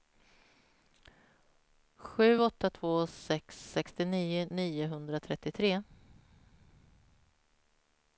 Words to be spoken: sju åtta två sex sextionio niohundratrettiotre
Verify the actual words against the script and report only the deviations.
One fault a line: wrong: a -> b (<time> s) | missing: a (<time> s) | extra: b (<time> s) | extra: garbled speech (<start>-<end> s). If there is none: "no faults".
no faults